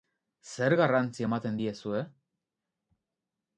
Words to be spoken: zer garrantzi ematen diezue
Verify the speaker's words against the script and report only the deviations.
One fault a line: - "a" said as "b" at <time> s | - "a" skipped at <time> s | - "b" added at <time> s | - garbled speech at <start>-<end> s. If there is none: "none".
none